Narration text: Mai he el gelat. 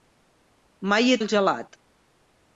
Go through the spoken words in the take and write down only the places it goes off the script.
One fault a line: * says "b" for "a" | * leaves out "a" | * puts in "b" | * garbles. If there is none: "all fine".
all fine